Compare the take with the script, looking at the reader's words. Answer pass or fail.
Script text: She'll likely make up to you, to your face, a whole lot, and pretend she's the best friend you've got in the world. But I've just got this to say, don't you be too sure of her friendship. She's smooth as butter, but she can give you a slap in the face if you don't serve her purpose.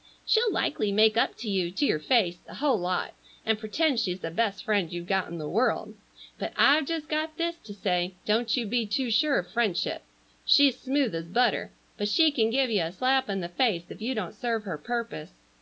fail